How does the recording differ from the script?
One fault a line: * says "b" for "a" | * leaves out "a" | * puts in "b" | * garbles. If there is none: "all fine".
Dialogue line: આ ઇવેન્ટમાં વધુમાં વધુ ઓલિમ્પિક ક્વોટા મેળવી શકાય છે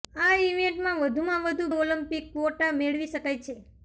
all fine